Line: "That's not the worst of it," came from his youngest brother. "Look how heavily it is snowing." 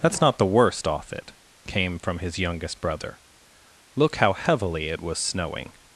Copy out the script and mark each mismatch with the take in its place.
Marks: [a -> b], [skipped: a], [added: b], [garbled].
"That's not the worst [of -> off] it," came from his youngest brother. "Look how heavily it [is -> was] snowing."